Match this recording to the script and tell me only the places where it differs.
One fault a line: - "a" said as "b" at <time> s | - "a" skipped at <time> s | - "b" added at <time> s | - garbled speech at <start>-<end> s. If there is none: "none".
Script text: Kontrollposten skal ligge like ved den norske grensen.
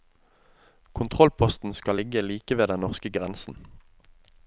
none